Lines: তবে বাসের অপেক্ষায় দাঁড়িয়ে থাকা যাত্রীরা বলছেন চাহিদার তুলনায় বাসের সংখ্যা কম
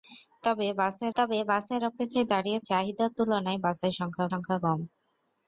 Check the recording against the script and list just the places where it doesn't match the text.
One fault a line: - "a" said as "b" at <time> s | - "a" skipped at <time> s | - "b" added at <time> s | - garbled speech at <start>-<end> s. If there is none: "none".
- "তবে বাসের" added at 1.2 s
- "থাকা যাত্রীরা বলছেন" skipped at 2.6 s
- "সংখ্যা" added at 4.3 s